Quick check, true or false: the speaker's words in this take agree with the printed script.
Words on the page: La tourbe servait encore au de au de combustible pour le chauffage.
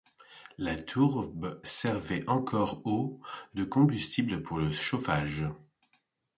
false